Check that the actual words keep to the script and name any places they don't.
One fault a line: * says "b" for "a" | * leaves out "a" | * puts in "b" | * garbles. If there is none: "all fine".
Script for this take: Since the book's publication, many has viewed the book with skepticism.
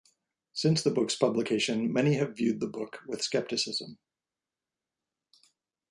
* says "have" for "has"